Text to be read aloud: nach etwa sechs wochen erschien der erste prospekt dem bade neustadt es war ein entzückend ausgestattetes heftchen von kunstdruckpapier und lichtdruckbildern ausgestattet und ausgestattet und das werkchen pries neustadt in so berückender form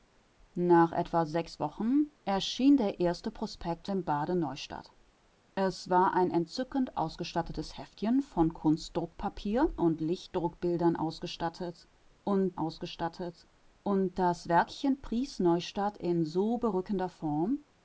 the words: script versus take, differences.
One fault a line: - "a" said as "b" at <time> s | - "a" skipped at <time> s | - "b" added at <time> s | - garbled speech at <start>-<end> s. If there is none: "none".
none